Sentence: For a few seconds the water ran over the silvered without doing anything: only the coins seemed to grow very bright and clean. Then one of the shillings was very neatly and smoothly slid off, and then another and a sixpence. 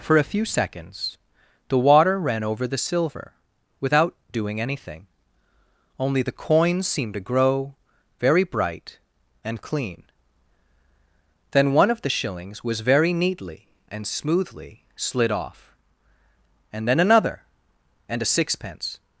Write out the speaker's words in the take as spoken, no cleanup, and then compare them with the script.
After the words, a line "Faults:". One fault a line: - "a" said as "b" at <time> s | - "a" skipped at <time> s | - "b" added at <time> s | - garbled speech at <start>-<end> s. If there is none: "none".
For a few seconds the water ran over the silver without doing anything: only the coins seemed to grow very bright and clean. Then one of the shillings was very neatly and smoothly slid off, and then another and a sixpence.
Faults:
- "silvered" said as "silver" at 2.8 s